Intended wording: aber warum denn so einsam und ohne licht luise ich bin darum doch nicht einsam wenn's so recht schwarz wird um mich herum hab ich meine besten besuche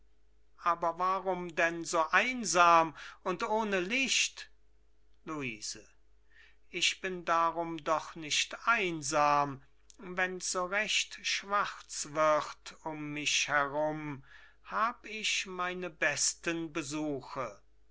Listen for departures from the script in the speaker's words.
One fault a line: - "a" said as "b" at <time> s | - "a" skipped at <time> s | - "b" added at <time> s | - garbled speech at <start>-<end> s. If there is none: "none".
none